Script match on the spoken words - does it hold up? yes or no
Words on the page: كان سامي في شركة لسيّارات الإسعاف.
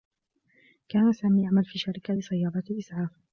no